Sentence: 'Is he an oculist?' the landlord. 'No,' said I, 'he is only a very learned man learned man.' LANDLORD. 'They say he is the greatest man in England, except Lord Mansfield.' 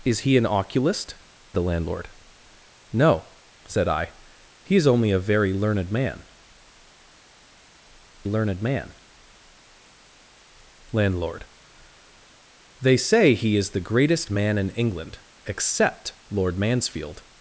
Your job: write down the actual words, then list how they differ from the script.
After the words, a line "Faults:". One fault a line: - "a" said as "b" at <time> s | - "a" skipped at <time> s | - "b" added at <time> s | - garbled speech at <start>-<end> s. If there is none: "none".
'Is he an oculist?' the landlord. 'No,' said I, 'he is only a very learned man learned man.' LANDLORD. 'They say he is the greatest man in England, except Lord Mansfield.'
Faults:
none